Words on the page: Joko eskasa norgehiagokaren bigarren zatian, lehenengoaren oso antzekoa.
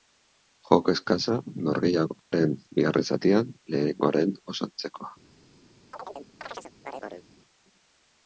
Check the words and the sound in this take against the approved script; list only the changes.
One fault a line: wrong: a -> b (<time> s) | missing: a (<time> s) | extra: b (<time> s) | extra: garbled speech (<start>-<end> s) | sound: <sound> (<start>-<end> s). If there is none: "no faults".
sound: dropout (2.2-2.3 s)
sound: chirp (5.9-7.3 s)